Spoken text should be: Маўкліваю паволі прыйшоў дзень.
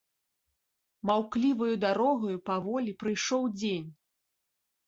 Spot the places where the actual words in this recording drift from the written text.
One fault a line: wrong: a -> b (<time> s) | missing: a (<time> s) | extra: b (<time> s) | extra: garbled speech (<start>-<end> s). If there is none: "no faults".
extra: дарогаю (1.9 s)